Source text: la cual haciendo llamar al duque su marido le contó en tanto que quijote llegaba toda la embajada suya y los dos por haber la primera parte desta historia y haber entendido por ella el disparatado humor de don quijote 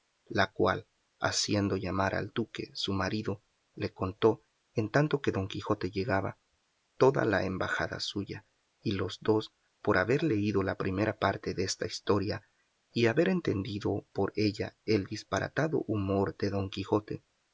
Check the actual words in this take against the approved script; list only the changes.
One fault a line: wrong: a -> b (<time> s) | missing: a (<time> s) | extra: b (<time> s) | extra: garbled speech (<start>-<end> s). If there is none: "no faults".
extra: don (5.3 s)
extra: leído (10.2 s)